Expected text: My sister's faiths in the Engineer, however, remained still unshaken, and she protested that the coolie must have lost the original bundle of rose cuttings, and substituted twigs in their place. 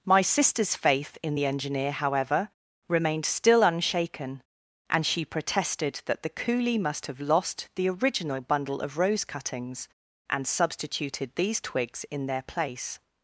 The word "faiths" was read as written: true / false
false